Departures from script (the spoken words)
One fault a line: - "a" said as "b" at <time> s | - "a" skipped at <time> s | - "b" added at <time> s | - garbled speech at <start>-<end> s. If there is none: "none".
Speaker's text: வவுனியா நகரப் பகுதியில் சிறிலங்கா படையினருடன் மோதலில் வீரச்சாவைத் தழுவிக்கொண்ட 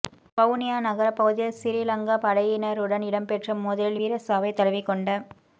- "இடம்பெற்ற" added at 3.1 s